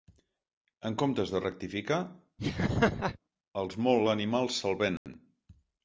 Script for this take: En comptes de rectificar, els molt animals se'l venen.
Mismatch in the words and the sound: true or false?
true